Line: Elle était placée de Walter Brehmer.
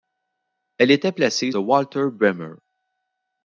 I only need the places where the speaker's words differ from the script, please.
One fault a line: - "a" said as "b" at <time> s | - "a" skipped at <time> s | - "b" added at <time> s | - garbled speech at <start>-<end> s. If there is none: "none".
none